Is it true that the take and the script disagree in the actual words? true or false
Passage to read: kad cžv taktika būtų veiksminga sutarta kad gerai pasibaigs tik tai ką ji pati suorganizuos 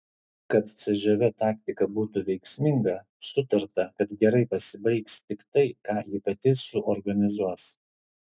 false